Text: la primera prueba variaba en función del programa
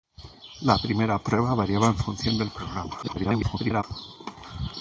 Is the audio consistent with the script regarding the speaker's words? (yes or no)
no